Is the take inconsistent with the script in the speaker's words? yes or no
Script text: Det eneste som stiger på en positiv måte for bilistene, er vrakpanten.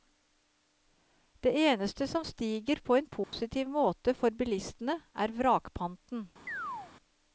no